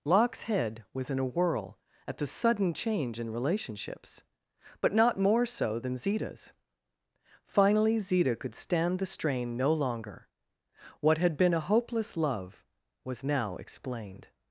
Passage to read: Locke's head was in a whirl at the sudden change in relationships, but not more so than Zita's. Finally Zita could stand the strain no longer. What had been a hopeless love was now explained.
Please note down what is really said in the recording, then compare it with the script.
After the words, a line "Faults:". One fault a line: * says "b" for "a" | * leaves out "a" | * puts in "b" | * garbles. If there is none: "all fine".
Locke's head was in a whirl at the sudden change in relationships, but not more so than Zita's. Finally Zita could stand the strain no longer. What had been a hopeless love was now explained.
Faults:
all fine